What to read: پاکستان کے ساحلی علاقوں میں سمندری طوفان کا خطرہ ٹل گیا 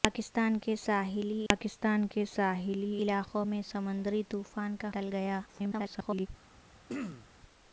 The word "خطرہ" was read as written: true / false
false